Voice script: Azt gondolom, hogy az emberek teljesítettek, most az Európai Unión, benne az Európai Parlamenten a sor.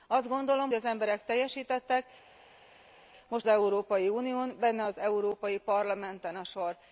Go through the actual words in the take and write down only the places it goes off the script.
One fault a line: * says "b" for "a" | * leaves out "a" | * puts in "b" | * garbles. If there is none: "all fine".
* leaves out "hogy"
* leaves out "az"